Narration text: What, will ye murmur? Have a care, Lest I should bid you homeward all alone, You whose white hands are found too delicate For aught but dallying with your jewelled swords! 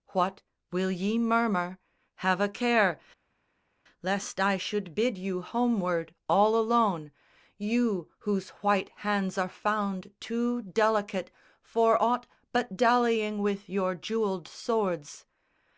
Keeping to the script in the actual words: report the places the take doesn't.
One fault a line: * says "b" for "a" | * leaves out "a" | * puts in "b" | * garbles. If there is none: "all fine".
all fine